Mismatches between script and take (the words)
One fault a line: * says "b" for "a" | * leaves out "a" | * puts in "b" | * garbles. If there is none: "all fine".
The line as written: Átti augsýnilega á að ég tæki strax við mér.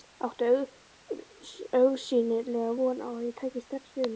* puts in "von"